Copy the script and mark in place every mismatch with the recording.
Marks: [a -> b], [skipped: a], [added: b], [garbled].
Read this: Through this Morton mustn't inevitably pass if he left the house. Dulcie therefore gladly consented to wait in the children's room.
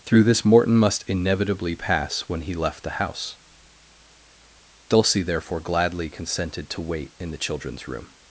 Through this Morton [mustn't -> must] inevitably pass [if -> when] he left the house. Dulcie therefore gladly consented to wait in the children's room.